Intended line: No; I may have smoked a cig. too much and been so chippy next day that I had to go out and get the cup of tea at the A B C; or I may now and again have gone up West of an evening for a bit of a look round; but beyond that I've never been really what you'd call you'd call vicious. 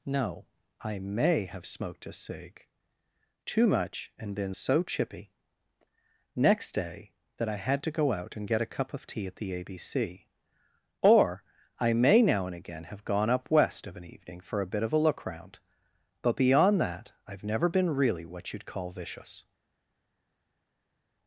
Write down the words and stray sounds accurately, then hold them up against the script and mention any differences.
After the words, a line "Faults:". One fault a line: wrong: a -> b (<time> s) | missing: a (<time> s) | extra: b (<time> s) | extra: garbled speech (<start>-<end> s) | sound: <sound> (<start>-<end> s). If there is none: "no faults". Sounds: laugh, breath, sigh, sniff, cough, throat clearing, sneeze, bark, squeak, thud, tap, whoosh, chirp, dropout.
No; I may have smoked a cig. too much and been so chippy next day that I had to go out and get a cup of tea at the A B C; or I may now and again have gone up West of an evening for a bit of a look round; but beyond that I've never been really what you'd call vicious.
Faults:
wrong: the -> a (8.6 s)
missing: you'd call (18.9 s)